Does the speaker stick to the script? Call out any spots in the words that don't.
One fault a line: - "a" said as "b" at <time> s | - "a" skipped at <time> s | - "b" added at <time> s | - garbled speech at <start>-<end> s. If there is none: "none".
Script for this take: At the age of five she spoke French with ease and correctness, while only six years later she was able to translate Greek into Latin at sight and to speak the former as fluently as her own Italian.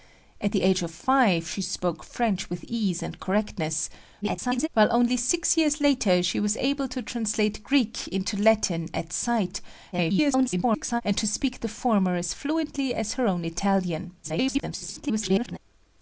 - garbled speech at 4.2-4.7 s
- garbled speech at 9.9-11.0 s
- garbled speech at 14.2-15.6 s